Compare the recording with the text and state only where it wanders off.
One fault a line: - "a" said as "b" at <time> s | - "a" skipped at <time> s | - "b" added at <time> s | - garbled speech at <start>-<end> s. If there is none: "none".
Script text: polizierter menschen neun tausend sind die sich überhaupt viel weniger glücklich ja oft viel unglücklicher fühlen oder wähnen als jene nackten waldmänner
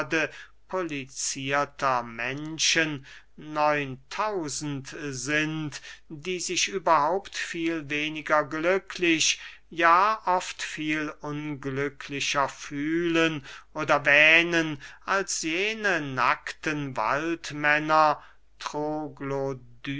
none